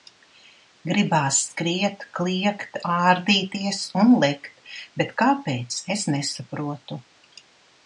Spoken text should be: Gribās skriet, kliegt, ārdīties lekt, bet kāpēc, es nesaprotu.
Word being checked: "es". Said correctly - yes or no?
yes